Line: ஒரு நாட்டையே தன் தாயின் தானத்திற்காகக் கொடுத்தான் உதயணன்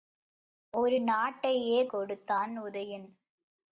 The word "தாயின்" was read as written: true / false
false